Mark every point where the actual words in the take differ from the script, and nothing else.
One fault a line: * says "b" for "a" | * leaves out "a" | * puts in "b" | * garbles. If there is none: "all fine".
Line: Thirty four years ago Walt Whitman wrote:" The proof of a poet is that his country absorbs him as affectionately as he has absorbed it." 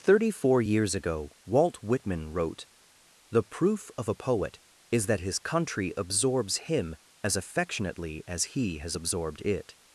all fine